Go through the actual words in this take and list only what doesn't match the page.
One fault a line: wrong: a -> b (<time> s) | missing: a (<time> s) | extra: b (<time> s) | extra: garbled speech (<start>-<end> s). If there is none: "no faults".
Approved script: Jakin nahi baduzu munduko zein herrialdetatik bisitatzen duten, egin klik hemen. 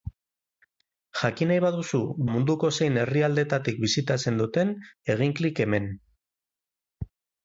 no faults